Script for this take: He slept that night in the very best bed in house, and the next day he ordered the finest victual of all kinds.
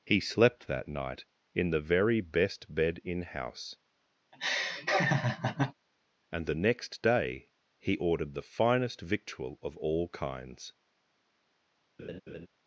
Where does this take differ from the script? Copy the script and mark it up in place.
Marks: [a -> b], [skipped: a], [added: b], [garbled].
He slept that night in the very best bed in house, and the next day he ordered the finest victual of all kinds.